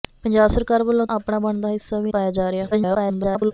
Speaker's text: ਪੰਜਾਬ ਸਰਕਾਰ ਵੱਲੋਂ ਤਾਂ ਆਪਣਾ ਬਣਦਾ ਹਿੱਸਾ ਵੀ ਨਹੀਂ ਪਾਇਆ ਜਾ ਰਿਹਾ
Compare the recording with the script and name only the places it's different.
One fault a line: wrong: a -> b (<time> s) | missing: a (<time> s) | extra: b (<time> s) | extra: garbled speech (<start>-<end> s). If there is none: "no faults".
missing: ਤਾਂ (1.1 s)
missing: ਨਹੀਂ (2.1 s)
extra: garbled speech (2.7-3.5 s)